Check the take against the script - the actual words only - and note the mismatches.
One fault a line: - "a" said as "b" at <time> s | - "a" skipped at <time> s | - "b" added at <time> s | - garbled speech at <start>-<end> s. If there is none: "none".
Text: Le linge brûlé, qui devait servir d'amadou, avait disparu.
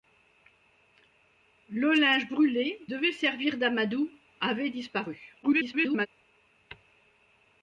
- "qui" skipped at 2.9 s
- garbled speech at 5.4-6.1 s